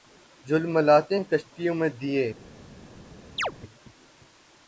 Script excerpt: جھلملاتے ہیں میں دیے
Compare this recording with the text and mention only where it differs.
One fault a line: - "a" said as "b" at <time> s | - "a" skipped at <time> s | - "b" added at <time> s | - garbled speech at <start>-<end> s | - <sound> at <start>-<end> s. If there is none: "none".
- "کشتیوں" added at 1.3 s
- chirp at 3.4-3.5 s